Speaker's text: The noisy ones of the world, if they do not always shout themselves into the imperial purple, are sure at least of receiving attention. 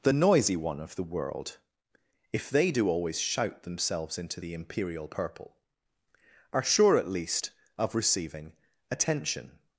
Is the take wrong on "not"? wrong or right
wrong